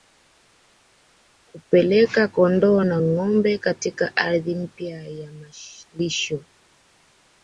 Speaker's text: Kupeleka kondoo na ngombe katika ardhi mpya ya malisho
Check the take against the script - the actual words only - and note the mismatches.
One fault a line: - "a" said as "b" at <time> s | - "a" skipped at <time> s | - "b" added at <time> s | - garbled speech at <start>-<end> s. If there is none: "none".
none